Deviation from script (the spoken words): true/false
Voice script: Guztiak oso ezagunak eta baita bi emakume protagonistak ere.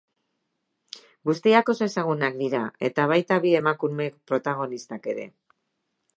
true